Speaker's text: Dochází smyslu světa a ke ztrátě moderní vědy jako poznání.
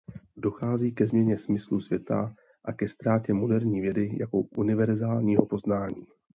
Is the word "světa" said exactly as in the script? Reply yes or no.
yes